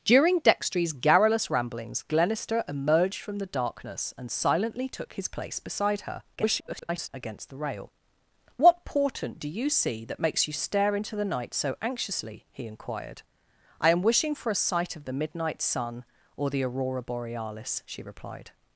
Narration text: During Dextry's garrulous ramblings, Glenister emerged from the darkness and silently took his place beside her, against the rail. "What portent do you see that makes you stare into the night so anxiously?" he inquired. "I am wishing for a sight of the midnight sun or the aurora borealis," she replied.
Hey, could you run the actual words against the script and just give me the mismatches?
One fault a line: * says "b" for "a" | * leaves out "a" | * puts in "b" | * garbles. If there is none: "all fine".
* garbles